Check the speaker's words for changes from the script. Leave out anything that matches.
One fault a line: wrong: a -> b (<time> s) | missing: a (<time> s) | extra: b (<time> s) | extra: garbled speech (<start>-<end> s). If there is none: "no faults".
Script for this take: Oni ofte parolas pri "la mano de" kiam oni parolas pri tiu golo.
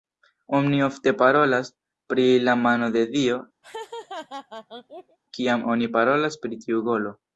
extra: dio (3.1 s)